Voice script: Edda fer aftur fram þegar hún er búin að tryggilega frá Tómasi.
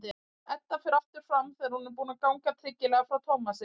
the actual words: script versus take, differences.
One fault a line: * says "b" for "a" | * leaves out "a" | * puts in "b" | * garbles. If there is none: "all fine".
* puts in "ganga"